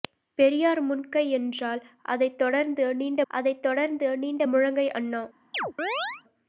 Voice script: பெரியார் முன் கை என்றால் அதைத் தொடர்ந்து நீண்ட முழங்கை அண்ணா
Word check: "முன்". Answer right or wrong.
right